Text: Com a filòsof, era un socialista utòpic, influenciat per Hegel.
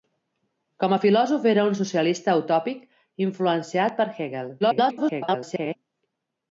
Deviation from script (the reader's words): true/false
true